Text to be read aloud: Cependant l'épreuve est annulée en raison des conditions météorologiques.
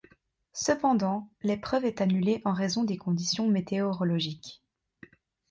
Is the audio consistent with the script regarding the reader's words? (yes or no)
yes